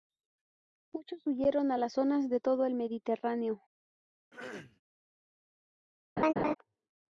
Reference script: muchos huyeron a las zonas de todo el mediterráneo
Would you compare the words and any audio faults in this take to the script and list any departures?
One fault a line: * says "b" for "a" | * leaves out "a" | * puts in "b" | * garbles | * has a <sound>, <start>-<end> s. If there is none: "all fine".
* has a throat clearing, 4.3-4.8 s
* has a laugh, 6.2-6.5 s